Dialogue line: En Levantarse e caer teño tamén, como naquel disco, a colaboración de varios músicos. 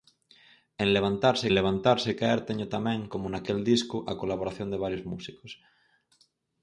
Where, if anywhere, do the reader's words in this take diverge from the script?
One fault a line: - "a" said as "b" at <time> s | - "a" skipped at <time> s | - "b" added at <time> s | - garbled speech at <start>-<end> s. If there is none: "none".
- "Levantarse" added at 1.6 s